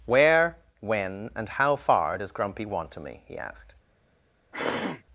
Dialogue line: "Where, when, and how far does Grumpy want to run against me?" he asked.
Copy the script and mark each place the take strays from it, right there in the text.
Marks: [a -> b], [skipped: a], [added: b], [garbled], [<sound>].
"Where, when, and how far does Grumpy want to [skipped: run against] me?" he asked. [throat clearing]